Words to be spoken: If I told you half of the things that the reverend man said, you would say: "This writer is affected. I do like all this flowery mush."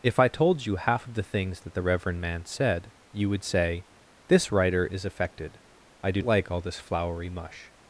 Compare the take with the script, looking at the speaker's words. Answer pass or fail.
pass